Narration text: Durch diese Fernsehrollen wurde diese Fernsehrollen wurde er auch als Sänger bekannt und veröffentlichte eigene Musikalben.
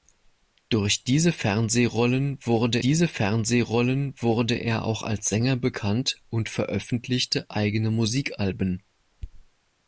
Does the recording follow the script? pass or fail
pass